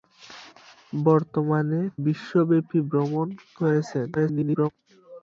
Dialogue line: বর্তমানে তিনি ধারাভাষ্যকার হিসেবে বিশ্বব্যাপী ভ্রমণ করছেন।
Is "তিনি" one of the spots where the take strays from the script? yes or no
yes